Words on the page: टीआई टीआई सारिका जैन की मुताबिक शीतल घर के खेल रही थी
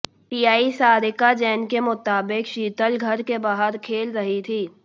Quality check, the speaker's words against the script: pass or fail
fail